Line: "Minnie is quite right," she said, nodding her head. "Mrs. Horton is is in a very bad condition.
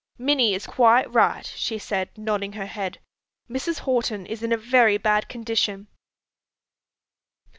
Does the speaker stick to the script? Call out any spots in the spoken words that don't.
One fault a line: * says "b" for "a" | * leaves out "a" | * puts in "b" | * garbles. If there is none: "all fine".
* leaves out "is"